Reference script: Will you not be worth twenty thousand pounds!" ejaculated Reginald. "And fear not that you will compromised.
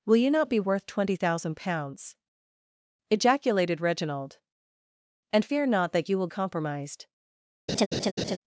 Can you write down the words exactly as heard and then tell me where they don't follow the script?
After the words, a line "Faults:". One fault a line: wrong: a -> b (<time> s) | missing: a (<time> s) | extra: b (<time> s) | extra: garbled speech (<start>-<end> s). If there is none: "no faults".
Will you not be worth twenty thousand pounds!" ejaculated Reginald. "And fear not that you will compromised.
Faults:
no faults